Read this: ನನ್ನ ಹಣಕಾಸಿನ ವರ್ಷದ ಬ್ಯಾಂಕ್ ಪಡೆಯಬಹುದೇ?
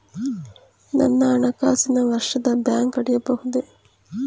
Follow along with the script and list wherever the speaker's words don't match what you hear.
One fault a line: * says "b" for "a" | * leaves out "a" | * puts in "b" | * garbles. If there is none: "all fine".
all fine